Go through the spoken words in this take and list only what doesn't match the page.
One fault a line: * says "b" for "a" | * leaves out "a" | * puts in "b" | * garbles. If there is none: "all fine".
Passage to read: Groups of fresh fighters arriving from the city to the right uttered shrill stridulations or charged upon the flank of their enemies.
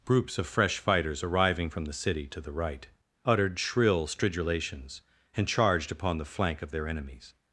* says "and" for "or"